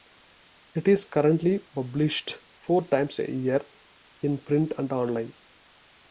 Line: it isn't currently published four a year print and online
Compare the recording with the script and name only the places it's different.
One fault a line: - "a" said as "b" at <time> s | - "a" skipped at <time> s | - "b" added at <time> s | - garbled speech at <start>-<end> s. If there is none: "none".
- "isn't" said as "is" at 0.9 s
- "times" added at 2.9 s
- "in" added at 4.2 s